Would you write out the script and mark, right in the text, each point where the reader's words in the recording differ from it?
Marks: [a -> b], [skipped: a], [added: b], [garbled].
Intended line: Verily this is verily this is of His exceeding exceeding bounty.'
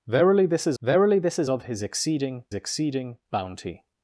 Verily this is verily this is of His exceeding exceeding bounty.'